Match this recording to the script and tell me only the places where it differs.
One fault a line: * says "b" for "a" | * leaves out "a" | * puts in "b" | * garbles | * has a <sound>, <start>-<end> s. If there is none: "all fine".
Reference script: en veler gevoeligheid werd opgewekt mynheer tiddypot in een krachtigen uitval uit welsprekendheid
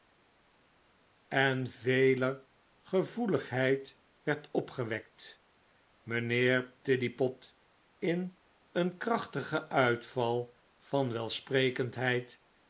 * says "van" for "uit"